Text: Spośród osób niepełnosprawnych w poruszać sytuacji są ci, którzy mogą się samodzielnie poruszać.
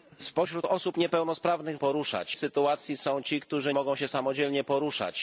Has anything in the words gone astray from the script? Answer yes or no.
no